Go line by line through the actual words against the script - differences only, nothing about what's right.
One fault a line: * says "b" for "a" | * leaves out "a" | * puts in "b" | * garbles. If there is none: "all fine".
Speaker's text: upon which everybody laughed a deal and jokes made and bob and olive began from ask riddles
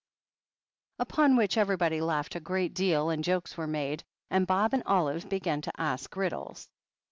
* puts in "great"
* puts in "were"
* says "to" for "from"